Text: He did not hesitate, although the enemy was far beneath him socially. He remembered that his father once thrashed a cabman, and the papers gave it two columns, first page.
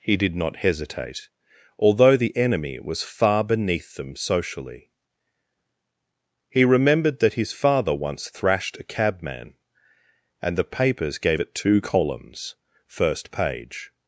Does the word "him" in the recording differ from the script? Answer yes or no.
yes